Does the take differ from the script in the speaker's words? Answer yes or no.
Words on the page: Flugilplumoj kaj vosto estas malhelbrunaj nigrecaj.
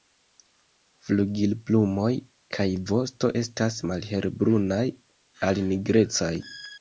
yes